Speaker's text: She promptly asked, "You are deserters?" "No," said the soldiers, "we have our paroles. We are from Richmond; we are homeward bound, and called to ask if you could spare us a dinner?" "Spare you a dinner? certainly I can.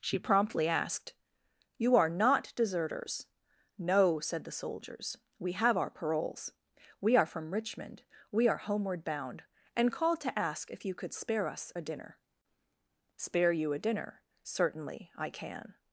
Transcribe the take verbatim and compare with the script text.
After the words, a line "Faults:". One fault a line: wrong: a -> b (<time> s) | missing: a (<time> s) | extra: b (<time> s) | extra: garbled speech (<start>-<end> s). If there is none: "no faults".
She promptly asked, "You are not deserters?" "No," said the soldiers, "we have our paroles. We are from Richmond; we are homeward bound, and called to ask if you could spare us a dinner?" "Spare you a dinner? certainly I can.
Faults:
extra: not (2.1 s)